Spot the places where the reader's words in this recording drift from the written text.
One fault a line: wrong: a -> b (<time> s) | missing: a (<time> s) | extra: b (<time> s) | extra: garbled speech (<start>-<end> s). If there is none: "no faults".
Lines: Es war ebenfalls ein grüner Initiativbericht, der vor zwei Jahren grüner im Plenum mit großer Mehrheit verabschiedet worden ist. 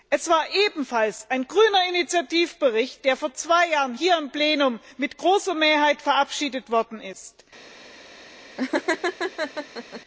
wrong: grüner -> hier (3.9 s)